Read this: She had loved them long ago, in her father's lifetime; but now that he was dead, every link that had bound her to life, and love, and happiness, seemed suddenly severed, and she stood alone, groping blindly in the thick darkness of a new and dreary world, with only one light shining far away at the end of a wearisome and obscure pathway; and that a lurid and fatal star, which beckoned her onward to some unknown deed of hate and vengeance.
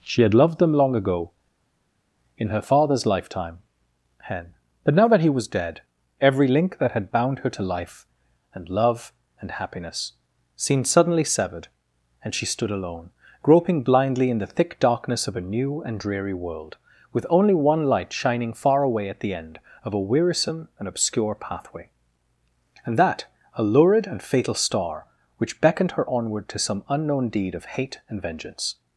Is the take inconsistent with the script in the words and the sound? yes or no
yes